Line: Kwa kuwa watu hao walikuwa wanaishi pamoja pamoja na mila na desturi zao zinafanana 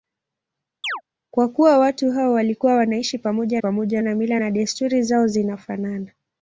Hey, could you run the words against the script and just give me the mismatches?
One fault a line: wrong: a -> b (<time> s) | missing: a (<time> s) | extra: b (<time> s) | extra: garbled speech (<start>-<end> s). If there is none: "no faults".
no faults